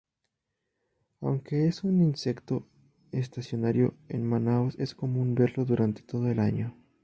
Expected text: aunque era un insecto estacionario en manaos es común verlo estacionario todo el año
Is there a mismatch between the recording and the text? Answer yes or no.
yes